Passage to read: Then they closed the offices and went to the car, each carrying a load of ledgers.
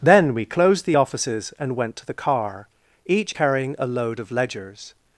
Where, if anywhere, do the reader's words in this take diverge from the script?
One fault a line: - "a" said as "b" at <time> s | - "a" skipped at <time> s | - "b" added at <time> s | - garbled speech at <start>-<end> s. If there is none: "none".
- "they" said as "we" at 0.3 s